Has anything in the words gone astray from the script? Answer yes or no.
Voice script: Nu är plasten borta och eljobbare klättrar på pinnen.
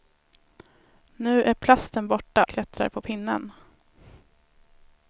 yes